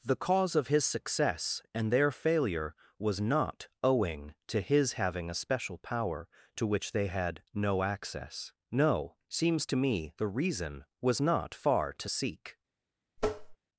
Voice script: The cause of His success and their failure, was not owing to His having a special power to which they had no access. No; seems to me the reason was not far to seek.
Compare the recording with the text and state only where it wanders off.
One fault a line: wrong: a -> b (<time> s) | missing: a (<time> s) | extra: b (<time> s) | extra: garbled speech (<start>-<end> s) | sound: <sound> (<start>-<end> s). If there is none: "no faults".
sound: tap (13.2-13.6 s)